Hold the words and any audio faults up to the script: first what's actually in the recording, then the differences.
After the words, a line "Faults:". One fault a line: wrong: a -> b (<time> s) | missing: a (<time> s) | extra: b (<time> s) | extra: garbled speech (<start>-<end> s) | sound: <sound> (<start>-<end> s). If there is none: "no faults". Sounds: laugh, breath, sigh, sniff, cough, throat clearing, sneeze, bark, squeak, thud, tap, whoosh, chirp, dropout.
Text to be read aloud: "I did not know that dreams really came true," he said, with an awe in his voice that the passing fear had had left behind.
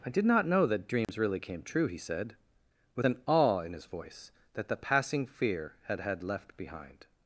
"I did not know that dreams really came true," he said, with an awe in his voice that the passing fear had had left behind.
Faults:
sound: dropout (1.0-1.1 s)